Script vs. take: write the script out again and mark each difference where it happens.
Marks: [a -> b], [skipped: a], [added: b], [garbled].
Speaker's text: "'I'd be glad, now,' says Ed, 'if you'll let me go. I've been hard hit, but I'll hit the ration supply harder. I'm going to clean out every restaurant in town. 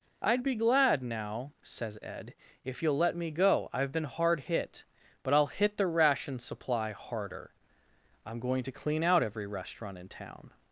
"'I'd be glad, now,' says Ed, 'if you'll let me go. I've been hard hit, but I'll hit the ration supply harder. I'm going to clean out every restaurant in town.